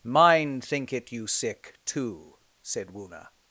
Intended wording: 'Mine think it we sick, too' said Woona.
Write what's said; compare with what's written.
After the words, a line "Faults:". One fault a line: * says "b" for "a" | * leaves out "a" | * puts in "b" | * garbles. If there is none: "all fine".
'Mine think it you sick, too' said Woona.
Faults:
* says "you" for "we"